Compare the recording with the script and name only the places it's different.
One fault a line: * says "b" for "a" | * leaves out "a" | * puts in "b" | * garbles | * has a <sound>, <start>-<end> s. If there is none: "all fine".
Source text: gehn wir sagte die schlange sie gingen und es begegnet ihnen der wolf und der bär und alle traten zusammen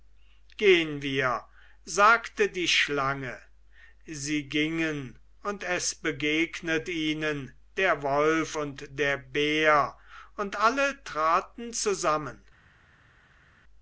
all fine